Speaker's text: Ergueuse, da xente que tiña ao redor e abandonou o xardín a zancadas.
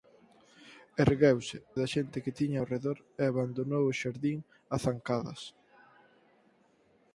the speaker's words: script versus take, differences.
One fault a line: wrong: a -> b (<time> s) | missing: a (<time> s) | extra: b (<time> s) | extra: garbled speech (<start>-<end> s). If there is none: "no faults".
no faults